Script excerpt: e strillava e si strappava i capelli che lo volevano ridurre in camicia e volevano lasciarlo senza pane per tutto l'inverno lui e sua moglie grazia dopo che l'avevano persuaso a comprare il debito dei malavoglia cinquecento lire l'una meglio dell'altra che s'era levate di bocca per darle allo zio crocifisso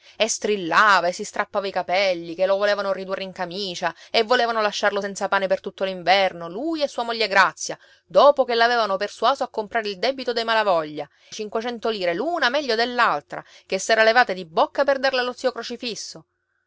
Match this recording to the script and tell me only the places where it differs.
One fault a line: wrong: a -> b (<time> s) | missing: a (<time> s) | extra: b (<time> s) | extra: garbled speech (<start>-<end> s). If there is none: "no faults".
no faults